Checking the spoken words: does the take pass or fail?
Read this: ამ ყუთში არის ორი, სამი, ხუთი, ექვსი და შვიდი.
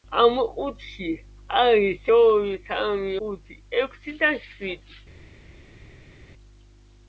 pass